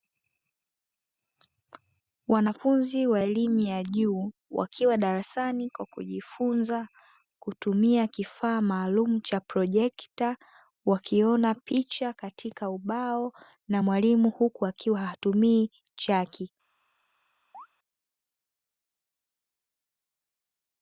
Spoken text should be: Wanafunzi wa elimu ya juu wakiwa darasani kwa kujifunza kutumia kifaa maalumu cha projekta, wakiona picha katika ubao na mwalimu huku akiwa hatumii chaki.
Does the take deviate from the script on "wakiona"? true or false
false